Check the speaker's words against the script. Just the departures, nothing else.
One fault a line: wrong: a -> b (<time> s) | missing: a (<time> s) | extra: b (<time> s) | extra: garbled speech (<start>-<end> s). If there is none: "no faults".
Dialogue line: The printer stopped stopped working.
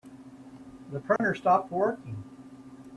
missing: stopped (1.7 s)